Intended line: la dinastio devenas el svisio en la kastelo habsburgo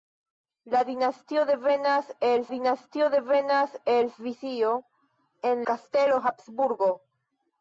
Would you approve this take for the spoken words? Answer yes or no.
no